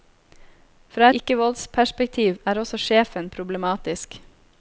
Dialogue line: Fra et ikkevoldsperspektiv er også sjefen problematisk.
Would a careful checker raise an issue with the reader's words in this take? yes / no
yes